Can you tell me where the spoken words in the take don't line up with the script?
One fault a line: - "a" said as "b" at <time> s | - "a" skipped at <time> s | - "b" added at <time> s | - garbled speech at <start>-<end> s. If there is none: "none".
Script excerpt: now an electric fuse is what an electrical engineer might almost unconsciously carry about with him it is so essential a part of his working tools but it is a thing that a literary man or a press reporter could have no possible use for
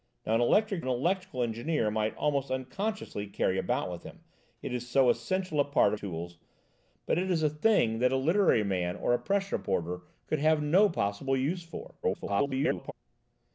- "fuse is what" skipped at 0.8 s
- "his working" skipped at 6.0 s
- garbled speech at 12.0-12.9 s